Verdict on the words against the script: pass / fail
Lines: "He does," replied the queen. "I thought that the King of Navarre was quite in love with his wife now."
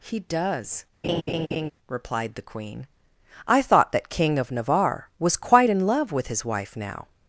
fail